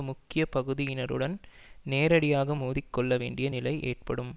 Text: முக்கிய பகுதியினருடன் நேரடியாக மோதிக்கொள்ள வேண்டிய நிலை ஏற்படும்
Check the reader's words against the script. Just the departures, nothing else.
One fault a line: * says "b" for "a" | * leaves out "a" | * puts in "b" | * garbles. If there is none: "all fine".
all fine